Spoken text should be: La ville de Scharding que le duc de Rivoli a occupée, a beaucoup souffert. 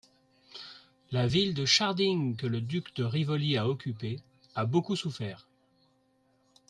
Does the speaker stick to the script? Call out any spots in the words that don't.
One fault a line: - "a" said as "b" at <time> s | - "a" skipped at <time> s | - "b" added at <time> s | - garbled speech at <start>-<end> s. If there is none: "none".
none